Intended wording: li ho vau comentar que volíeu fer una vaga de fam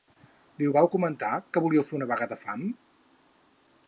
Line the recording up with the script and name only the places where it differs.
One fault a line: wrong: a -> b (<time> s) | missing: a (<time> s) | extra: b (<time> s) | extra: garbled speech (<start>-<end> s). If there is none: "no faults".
no faults